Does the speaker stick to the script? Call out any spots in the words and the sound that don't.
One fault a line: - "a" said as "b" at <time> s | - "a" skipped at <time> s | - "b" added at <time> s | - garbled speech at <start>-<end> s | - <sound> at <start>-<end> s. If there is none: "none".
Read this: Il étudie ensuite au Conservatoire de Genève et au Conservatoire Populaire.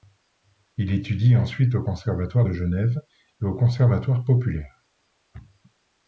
none